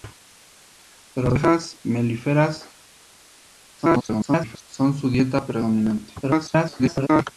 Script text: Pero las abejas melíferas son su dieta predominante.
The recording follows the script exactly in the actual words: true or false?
false